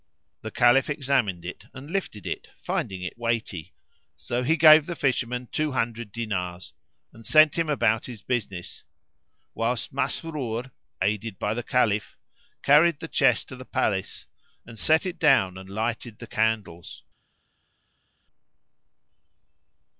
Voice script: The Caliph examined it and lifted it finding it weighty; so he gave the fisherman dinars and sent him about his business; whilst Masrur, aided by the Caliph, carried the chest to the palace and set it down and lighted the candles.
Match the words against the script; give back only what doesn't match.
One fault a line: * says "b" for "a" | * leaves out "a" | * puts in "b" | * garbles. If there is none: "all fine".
* puts in "two hundred"